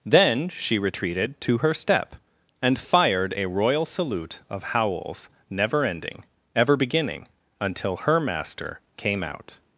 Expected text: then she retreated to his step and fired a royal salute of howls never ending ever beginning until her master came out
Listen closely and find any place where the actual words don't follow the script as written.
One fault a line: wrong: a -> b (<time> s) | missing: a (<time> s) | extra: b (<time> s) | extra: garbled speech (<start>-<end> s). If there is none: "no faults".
wrong: his -> her (1.6 s)